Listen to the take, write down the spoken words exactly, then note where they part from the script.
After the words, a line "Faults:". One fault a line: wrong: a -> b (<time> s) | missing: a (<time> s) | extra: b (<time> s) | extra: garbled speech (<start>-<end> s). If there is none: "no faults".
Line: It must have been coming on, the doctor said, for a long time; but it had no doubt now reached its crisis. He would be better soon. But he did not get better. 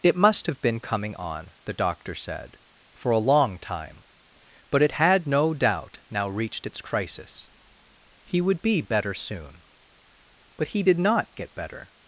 It must have been coming on, the doctor said, for a long time; but it had no doubt now reached its crisis. He would be better soon. But he did not get better.
Faults:
no faults